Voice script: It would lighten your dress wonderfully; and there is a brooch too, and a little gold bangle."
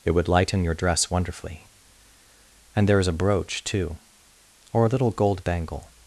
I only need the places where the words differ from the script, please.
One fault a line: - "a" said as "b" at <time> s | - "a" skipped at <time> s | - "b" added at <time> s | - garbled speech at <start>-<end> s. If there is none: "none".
- "and" said as "or" at 4.7 s